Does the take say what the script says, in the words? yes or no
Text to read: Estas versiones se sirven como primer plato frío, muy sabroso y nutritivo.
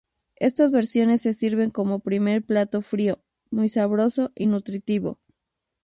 yes